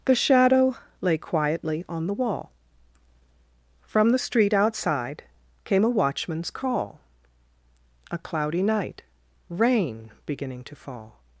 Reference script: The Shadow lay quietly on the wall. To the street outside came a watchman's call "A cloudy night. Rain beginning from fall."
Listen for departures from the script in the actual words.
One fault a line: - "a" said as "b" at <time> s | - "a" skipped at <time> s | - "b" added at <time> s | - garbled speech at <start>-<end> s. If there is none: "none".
- "To" said as "From" at 3.8 s
- "from" said as "to" at 10.6 s